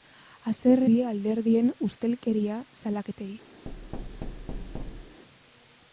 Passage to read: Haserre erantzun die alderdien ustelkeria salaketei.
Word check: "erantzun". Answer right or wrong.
wrong